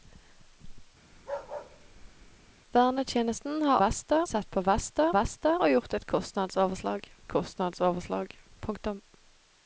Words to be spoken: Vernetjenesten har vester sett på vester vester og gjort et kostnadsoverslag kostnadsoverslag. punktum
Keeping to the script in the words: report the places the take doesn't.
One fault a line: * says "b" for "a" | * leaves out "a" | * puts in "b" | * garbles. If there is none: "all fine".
all fine